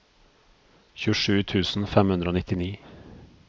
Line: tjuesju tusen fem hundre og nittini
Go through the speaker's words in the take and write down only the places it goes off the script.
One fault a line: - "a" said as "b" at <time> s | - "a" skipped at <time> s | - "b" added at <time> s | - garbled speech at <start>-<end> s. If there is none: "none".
none